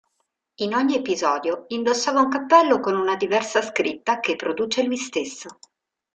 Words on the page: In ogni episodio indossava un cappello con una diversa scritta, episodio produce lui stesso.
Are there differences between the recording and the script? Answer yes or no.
yes